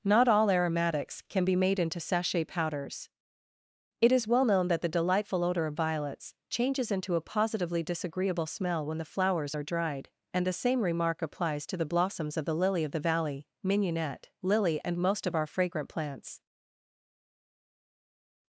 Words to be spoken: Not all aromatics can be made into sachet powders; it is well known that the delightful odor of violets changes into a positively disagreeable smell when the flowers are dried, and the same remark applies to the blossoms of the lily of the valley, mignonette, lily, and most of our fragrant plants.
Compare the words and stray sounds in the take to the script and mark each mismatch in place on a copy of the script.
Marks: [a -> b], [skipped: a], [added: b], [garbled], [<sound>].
Not all aromatics can be made into sachet powders; it is well known that the delightful odor of violets changes into a positively disagreeable smell when the flowers are dried, and the same remark applies to the blossoms of the lily of the valley, mignonette, lily, and most of our fragrant plants.